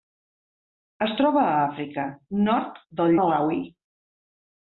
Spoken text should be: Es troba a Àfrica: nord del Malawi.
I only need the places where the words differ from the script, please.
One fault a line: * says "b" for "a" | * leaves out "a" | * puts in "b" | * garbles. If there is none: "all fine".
all fine